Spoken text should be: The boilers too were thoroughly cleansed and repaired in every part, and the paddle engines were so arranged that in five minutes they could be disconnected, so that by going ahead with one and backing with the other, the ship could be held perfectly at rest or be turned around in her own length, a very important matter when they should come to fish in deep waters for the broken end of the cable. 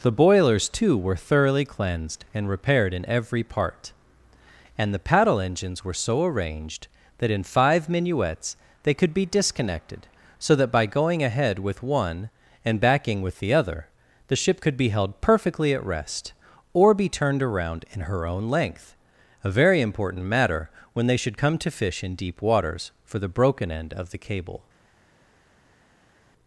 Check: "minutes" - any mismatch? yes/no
yes